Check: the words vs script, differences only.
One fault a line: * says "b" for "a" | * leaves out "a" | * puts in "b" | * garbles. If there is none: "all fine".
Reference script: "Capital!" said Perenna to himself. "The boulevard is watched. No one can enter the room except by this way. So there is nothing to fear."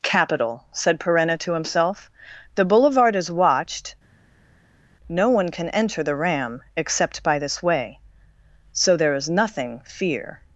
* says "ram" for "room"
* leaves out "to"